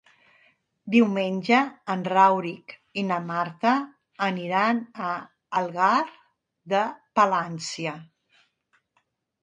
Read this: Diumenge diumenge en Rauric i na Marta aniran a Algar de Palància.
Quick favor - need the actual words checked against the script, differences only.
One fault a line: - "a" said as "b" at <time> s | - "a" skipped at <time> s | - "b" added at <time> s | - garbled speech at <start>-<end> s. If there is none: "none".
- "diumenge" skipped at 1.6 s